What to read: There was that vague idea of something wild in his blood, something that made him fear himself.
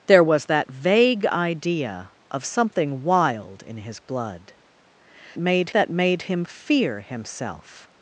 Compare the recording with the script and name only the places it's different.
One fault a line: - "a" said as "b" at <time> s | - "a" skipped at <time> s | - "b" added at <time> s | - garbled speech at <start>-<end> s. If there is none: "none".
- "something" said as "made" at 5.4 s